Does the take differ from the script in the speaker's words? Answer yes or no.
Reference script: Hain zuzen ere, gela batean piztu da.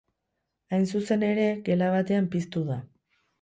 no